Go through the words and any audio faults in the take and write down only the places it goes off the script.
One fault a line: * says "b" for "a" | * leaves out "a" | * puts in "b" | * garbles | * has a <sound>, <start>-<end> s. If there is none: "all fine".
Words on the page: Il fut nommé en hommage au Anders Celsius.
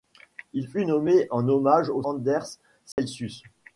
* has a dropout, 2.9-3.0 s